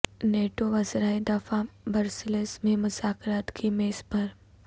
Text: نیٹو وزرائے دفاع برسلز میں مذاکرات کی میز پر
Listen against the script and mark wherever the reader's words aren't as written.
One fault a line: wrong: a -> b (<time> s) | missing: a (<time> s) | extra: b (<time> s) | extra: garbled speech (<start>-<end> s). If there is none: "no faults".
no faults